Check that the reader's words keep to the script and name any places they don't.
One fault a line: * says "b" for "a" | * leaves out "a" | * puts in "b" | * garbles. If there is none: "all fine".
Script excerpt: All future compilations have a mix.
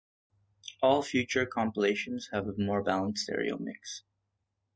* puts in "more balanced stereo"